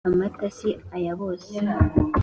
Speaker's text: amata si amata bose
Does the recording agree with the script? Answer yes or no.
no